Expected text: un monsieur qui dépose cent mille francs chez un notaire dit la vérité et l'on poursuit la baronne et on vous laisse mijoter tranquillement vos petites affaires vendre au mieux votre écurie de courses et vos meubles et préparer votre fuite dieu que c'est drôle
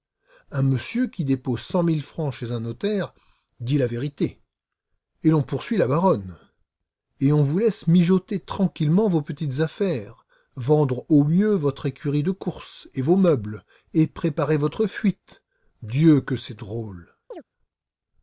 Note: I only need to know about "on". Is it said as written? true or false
true